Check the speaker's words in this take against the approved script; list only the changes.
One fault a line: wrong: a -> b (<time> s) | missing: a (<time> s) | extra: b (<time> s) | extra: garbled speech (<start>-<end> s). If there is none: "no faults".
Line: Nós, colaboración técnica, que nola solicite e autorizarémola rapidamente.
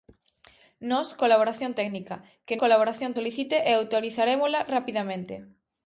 wrong: nola -> colaboración (2.6 s)